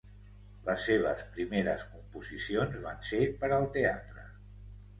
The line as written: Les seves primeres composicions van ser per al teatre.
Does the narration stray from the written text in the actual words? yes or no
no